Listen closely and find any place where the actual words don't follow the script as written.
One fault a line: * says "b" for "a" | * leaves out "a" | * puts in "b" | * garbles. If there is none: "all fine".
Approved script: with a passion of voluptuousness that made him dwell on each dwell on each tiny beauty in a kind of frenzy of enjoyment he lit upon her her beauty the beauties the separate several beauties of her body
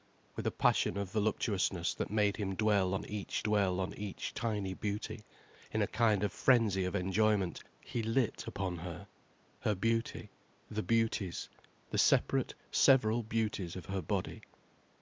all fine